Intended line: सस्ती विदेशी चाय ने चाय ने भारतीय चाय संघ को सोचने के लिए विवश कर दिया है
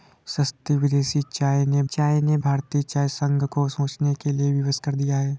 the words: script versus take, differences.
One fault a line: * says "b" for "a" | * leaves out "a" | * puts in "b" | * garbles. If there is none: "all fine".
all fine